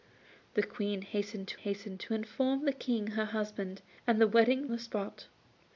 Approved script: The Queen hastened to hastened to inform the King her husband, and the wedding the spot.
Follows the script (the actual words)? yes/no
yes